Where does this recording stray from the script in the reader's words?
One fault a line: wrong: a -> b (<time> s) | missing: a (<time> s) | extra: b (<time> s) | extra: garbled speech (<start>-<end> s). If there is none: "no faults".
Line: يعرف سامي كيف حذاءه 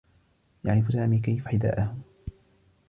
no faults